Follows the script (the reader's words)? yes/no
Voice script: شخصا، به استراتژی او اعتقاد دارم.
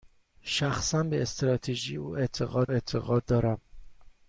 no